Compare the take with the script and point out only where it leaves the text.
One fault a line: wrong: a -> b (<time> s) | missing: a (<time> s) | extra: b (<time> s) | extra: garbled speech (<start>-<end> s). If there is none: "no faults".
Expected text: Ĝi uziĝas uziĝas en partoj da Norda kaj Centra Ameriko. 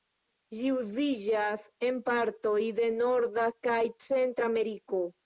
missing: uziĝas (1.6 s)
wrong: da -> de (2.8 s)